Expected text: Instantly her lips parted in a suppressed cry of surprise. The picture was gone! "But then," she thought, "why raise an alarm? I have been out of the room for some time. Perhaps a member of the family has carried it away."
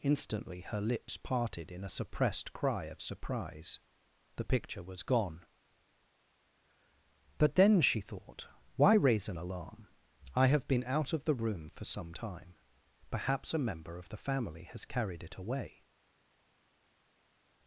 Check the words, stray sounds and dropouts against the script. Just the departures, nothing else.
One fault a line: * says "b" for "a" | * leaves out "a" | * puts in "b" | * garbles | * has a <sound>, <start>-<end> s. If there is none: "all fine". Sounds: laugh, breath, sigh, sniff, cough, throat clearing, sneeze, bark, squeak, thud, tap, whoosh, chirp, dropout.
all fine